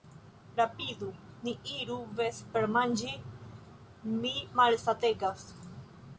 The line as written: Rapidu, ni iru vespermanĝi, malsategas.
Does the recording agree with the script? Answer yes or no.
no